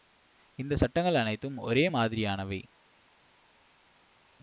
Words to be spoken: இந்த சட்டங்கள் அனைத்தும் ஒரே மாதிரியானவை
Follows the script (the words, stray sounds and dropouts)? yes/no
yes